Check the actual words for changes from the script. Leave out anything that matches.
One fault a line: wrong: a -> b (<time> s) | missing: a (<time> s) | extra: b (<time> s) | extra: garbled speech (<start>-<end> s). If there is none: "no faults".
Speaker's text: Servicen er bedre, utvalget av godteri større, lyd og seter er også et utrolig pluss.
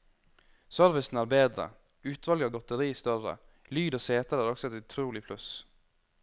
no faults